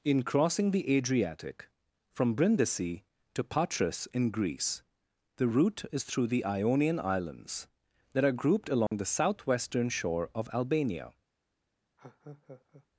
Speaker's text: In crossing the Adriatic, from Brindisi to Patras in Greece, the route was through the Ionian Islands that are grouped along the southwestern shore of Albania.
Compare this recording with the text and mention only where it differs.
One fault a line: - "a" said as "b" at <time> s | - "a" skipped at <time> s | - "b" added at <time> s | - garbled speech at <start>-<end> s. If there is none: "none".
- "was" said as "is" at 5.9 s